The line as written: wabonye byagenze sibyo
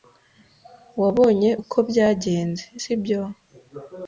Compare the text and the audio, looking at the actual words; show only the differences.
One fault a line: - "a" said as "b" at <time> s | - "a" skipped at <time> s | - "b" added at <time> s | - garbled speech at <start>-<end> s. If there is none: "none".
- "uko" added at 1.6 s